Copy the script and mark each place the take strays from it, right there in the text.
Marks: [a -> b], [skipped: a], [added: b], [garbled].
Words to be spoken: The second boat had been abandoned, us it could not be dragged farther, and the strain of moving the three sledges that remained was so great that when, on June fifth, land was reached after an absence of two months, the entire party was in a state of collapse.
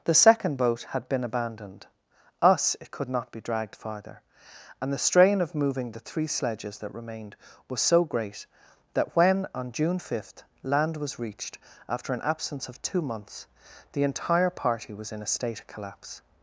The second boat had been abandoned, us it could not be dragged farther, and the strain of moving the three sledges that remained was so great that when, on June fifth, land was reached after an absence of two months, the entire party was in a state of collapse.